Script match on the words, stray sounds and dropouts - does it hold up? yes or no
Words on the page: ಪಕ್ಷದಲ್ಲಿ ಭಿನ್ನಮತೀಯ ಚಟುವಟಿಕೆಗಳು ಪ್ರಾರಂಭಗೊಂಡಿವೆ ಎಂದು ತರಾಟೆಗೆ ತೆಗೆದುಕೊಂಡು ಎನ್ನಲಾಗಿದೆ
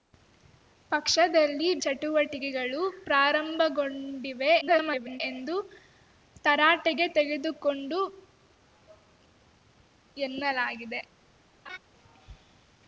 no